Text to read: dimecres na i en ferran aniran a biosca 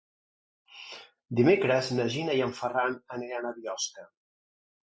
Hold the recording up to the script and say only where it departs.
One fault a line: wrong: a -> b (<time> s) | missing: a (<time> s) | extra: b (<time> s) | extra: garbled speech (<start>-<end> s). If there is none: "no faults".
extra: gina (2.1 s)